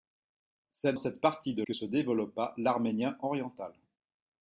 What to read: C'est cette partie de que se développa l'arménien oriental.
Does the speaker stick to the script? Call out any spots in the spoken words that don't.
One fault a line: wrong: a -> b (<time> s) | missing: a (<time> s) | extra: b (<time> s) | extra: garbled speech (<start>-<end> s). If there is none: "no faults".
no faults